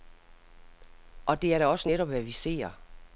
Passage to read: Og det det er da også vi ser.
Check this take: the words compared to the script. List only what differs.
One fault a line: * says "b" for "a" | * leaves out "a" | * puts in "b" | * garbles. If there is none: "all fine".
* leaves out "det"
* puts in "netop hvad"